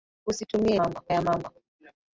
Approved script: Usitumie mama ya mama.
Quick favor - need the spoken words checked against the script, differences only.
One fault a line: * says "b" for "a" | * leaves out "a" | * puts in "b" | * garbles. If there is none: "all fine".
all fine